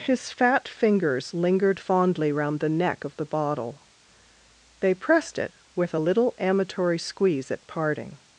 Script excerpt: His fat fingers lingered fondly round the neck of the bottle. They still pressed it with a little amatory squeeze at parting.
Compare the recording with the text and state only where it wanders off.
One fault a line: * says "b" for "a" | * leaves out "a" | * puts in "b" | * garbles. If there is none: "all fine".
* leaves out "still"